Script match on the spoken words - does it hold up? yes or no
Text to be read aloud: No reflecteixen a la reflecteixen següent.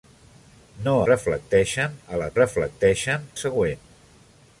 yes